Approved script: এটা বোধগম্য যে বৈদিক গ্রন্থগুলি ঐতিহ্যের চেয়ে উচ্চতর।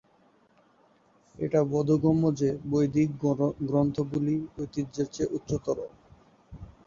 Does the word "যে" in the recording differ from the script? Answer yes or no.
no